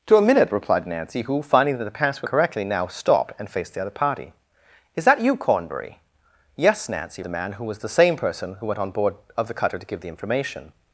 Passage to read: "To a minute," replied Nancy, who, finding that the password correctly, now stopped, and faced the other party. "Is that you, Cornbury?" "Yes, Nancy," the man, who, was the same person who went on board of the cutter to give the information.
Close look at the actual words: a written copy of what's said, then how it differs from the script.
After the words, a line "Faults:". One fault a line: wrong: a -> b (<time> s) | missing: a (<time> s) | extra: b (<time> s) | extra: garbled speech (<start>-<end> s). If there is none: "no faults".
"To a minute," replied Nancy, who, finding that the password correctly, now stopped, and faced the other party. "Is that you, Cornbury?" "Yes, Nancy," the man, who, was the same person who went on board of the cutter to give the information.
Faults:
no faults